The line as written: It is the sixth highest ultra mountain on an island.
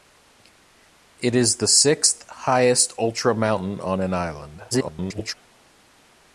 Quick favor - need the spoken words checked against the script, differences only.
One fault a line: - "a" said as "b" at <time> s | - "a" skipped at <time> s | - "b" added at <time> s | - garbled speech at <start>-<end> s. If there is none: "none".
- garbled speech at 4.7-5.3 s